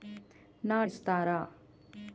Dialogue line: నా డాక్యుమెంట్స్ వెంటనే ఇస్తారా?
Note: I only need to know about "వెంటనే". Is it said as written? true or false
false